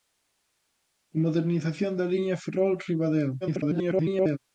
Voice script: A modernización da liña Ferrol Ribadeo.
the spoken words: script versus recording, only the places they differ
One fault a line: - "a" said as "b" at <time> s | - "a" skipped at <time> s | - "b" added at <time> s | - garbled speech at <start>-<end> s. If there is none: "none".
- garbled speech at 3.4-4.4 s